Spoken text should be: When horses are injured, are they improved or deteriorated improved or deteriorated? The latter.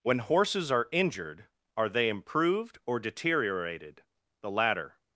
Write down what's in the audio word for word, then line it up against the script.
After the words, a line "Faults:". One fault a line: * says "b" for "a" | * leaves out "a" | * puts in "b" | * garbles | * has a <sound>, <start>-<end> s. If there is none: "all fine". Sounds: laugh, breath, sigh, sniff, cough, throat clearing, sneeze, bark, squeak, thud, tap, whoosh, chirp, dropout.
When horses are injured, are they improved or deteriorated? The latter.
Faults:
* leaves out "improved or deteriorated"